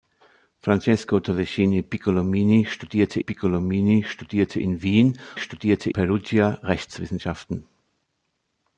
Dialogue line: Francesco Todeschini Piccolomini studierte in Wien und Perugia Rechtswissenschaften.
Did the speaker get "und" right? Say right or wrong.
wrong